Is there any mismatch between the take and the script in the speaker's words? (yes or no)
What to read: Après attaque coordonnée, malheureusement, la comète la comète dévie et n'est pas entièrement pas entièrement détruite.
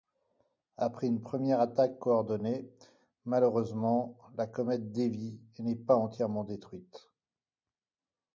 yes